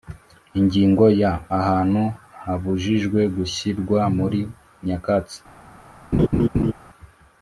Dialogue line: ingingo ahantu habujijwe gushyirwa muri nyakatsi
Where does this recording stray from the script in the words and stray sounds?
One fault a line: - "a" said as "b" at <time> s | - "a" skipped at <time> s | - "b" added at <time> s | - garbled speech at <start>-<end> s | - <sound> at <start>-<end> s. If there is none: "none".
- "ya" added at 1.2 s
- laugh at 6.1-6.7 s